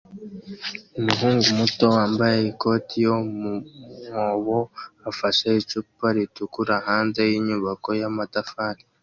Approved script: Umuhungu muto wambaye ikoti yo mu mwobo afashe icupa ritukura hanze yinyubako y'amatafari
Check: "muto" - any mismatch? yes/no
no